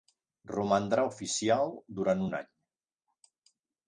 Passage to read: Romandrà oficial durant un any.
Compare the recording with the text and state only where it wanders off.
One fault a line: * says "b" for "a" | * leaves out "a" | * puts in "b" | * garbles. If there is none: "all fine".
all fine